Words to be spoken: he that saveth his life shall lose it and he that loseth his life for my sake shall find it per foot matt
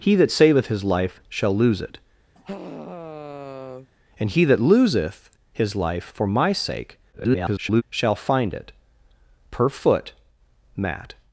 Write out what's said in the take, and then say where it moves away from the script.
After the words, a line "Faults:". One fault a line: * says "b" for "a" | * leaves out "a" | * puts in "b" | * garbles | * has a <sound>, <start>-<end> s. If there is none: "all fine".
he that saveth his life shall lose it and he that loseth his life for my sake [garbled] shall find it per foot matt
Faults:
* has a sigh, 2.3-3.9 s
* garbles